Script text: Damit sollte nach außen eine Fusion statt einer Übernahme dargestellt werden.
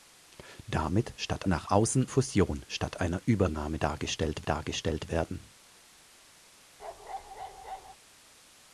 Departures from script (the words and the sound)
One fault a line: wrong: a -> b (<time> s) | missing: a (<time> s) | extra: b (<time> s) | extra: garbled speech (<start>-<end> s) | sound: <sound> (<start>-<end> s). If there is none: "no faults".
wrong: sollte -> statt (1.1 s)
missing: eine (2.1 s)
extra: dargestellt (4.4 s)
sound: bark (6.8-8.0 s)